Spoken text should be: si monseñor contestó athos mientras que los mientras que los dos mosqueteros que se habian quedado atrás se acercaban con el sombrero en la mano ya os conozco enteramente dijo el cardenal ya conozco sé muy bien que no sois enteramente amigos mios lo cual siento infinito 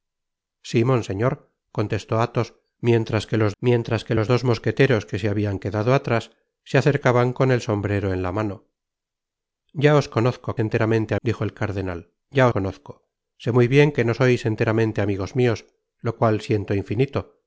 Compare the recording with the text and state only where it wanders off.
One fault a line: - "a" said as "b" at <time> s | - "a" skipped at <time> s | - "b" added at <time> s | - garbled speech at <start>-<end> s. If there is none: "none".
none